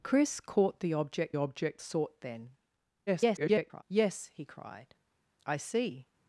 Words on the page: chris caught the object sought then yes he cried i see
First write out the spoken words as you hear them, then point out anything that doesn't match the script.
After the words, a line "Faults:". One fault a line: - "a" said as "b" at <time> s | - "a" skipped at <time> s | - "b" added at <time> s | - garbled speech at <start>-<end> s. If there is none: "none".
chris caught the object object sought then [garbled] yes he cried i see
Faults:
- "object" added at 1.4 s
- garbled speech at 3.1-3.8 s